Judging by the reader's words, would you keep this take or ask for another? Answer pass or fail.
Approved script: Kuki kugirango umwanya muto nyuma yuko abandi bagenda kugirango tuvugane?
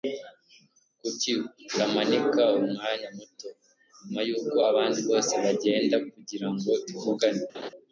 fail